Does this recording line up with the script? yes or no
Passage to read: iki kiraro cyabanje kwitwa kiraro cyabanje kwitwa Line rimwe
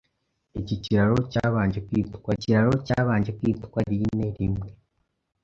yes